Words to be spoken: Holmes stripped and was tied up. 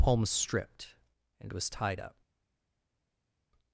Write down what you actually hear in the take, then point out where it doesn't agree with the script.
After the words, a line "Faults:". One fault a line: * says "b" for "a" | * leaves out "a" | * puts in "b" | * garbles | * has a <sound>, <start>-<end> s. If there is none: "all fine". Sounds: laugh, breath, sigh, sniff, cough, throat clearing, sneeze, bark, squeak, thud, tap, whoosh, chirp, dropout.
Palms stripped and was tied up.
Faults:
* says "Palms" for "Holmes"